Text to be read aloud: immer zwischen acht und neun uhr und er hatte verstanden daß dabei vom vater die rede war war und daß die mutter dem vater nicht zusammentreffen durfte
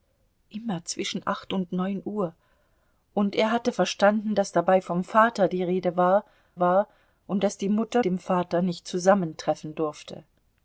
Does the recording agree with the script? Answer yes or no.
yes